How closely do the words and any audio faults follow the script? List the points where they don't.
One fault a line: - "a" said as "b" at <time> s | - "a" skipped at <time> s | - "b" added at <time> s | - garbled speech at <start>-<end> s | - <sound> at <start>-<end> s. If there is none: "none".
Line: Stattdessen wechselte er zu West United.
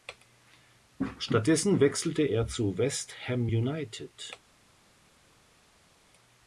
- "Ham" added at 3.3 s